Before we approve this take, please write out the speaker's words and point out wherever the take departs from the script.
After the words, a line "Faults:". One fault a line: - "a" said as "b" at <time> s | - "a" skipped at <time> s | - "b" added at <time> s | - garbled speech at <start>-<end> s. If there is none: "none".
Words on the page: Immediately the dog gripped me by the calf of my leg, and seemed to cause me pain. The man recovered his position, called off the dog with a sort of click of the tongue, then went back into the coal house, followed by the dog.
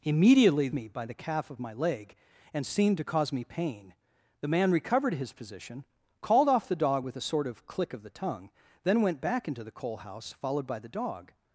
Immediately me by the calf of my leg, and seemed to cause me pain. The man recovered his position, called off the dog with a sort of click of the tongue, then went back into the coal house, followed by the dog.
Faults:
- "the dog gripped" skipped at 0.7 s